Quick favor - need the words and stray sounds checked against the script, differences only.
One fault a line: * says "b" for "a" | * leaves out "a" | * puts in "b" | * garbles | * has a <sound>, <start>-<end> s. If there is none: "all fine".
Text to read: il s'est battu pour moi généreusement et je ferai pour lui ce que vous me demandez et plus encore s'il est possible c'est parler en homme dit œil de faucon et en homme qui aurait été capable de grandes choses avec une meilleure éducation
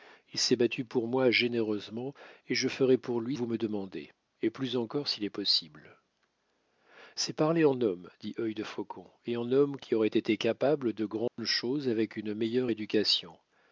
* leaves out "ce que"
* has a dropout, 11.3-11.4 s